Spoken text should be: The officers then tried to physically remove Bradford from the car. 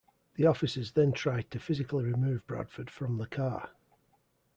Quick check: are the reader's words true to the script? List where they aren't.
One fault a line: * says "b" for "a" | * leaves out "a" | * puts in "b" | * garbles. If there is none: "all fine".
all fine